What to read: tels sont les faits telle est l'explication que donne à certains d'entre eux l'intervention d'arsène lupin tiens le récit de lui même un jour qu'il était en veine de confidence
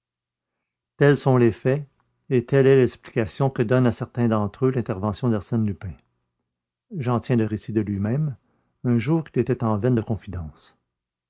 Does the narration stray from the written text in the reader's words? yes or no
yes